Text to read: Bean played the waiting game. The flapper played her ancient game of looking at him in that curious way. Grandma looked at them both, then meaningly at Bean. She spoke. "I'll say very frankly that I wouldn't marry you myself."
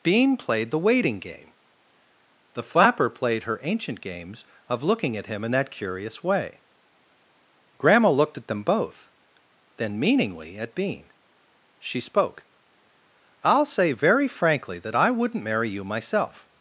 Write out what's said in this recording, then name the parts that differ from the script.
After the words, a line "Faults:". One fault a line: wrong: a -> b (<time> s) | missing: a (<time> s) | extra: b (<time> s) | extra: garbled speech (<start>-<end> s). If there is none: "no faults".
Bean played the waiting game. The flapper played her ancient games of looking at him in that curious way. Grandma looked at them both, then meaningly at Bean. She spoke. "I'll say very frankly that I wouldn't marry you myself."
Faults:
wrong: game -> games (4.0 s)